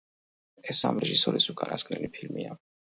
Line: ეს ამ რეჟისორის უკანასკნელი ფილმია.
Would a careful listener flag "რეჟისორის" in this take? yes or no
no